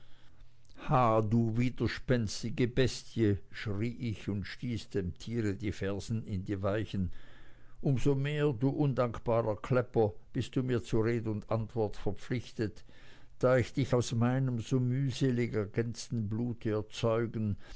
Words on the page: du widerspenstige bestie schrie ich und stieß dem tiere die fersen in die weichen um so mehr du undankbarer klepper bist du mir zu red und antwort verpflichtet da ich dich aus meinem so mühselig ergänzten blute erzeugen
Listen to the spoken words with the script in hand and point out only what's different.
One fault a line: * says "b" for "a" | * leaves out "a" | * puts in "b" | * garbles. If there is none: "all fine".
all fine